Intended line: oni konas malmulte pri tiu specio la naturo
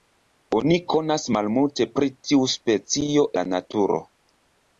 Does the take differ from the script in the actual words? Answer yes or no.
no